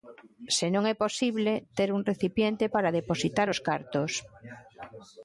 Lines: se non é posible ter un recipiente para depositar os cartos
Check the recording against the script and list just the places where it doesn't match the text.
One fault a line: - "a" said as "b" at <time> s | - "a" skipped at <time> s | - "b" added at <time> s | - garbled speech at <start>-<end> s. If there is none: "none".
none